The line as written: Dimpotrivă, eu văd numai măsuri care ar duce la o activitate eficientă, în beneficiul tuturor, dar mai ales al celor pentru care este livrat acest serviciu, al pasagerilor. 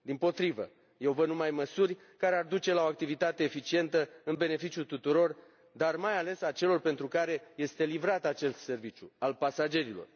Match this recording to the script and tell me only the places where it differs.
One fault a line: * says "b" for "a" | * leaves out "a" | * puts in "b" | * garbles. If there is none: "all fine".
all fine